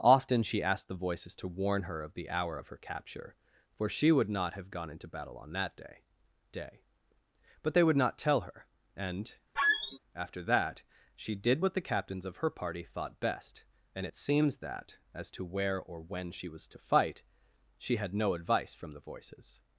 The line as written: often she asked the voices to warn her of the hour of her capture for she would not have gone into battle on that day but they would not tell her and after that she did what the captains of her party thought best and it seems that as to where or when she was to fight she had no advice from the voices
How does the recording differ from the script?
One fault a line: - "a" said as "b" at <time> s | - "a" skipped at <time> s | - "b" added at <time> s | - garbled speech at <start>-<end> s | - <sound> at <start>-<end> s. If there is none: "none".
- "day" added at 6.5 s
- squeak at 9.6-10.0 s